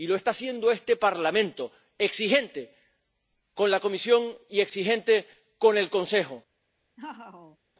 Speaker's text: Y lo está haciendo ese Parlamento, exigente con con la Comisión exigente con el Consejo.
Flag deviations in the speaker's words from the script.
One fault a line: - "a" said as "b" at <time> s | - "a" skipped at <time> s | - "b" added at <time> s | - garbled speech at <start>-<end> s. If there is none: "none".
- "ese" said as "este" at 0.7 s
- "con" skipped at 3.7 s
- "y" added at 4.5 s